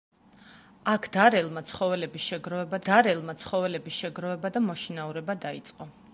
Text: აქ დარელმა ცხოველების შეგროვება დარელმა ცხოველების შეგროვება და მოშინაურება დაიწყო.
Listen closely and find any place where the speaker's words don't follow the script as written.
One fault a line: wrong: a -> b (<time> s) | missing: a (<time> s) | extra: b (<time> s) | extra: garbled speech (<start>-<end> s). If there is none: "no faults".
no faults